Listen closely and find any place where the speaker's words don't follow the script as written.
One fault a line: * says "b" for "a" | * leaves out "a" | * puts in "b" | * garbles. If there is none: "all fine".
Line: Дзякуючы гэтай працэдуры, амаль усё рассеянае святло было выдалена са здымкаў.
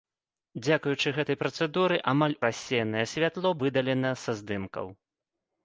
* leaves out "усё"
* leaves out "было"